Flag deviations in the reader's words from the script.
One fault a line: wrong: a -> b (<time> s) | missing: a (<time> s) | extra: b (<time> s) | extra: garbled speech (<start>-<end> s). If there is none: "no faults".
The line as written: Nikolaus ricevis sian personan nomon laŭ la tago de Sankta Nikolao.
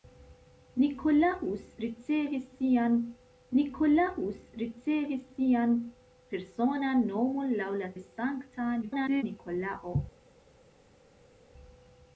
extra: nikolaus ricevis sian (3.6 s)
missing: tago (7.9 s)
extra: garbled speech (8.8-9.2 s)